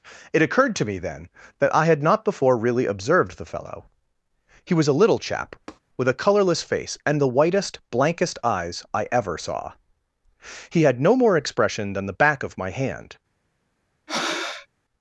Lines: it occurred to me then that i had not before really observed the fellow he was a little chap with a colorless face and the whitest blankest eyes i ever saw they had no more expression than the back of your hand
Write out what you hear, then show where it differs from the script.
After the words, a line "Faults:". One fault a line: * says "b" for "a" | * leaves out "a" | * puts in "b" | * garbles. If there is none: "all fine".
it occurred to me then that i had not before really observed the fellow he was a little chap with a colorless face and the whitest blankest eyes i ever saw he had no more expression than the back of my hand
Faults:
* says "he" for "they"
* says "my" for "your"